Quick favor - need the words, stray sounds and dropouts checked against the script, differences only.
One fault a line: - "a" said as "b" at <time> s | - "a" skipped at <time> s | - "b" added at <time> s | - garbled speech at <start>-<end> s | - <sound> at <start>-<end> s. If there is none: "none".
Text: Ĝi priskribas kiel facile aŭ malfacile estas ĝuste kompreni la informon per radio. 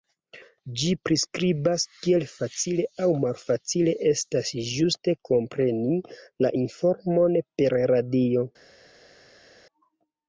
none